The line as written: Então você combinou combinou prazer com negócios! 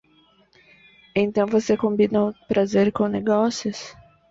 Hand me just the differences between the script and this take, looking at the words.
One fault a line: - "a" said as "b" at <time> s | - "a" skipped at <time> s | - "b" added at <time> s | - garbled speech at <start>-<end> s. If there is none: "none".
- "combinou" skipped at 2.3 s